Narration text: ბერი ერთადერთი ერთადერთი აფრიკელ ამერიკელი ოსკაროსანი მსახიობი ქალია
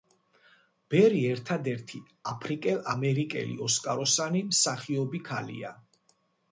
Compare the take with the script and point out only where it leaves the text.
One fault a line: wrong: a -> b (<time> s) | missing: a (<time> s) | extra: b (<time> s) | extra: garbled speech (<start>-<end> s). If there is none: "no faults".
missing: ერთადერთი (2.0 s)